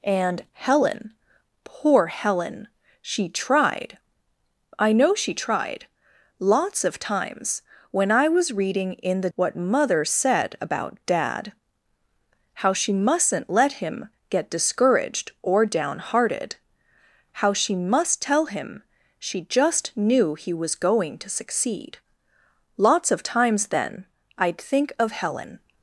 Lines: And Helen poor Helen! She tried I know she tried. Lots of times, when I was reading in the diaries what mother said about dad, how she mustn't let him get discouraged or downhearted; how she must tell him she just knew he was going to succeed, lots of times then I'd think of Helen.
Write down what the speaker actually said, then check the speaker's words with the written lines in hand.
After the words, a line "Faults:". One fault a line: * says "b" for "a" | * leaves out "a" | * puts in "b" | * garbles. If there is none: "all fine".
And Helen poor Helen! She tried I know she tried. Lots of times, when I was reading in the what mother said about dad, how she mustn't let him get discouraged or downhearted; how she must tell him she just knew he was going to succeed, lots of times then I'd think of Helen.
Faults:
* leaves out "diaries"